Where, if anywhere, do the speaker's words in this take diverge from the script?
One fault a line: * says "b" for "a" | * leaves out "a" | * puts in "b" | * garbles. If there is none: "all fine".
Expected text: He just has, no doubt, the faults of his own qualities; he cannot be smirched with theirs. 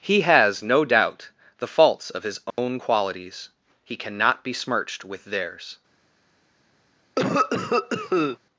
* leaves out "just"